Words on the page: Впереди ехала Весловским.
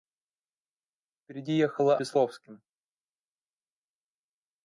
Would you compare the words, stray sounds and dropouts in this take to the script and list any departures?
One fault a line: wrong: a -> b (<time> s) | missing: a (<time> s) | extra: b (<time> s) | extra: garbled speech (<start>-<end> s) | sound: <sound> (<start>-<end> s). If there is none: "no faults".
no faults